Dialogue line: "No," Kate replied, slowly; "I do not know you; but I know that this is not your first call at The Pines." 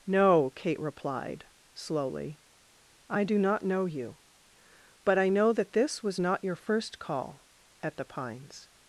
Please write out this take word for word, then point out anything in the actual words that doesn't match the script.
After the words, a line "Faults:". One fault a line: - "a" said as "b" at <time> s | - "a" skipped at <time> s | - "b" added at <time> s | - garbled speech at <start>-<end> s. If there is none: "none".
"No," Kate replied, slowly; "I do not know you; but I know that this was not your first call at The Pines."
Faults:
- "is" said as "was" at 6.0 s